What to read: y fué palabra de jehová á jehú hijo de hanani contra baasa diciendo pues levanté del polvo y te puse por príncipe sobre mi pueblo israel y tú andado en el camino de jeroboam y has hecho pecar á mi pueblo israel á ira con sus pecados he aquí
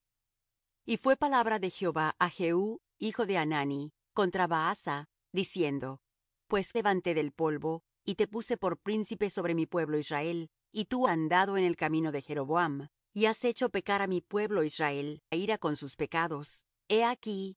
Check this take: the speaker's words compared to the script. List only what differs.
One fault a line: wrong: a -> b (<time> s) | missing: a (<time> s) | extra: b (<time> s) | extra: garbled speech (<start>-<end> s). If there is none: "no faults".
no faults